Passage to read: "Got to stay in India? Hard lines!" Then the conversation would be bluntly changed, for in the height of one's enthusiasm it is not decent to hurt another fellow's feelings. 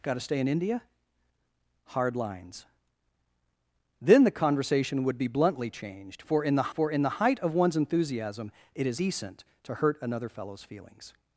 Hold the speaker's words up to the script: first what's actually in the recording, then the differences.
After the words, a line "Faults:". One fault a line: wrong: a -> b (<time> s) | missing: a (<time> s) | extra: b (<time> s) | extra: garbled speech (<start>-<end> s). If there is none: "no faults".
"Got to stay in India? Hard lines!" Then the conversation would be bluntly changed, for in the for in the height of one's enthusiasm it is decent to hurt another fellow's feelings.
Faults:
extra: for in the (6.7 s)
missing: not (9.0 s)